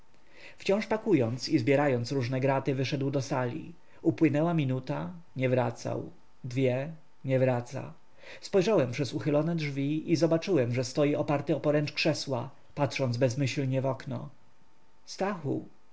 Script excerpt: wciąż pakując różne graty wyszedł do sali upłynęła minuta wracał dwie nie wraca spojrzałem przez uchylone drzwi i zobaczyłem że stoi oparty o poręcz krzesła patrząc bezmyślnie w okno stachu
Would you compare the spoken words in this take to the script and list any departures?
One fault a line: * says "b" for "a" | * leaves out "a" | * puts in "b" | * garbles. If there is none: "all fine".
* puts in "i zbierając"
* puts in "nie"